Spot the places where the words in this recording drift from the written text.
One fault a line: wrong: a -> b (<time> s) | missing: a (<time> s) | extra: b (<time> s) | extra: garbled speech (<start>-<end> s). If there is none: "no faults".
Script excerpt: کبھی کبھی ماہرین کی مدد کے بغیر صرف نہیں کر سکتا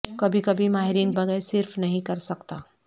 missing: کی مدد کے (1.1 s)